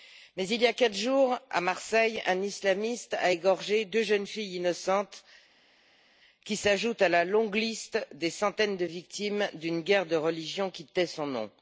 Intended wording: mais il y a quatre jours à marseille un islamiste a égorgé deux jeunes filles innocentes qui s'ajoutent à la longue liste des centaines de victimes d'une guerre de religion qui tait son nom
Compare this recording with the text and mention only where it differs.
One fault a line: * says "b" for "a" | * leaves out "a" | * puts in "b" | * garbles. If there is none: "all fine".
all fine